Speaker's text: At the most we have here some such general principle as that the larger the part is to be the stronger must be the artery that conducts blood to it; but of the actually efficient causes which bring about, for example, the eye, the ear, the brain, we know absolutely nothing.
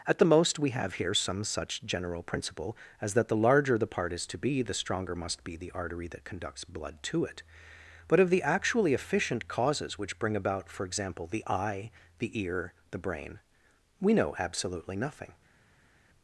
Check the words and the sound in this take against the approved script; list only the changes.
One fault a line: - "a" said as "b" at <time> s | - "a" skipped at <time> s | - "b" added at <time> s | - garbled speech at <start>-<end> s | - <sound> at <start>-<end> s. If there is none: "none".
none